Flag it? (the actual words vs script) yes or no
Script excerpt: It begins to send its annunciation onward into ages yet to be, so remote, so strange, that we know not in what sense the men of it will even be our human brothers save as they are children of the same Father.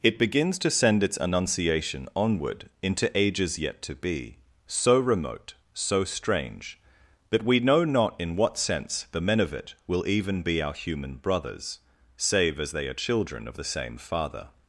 no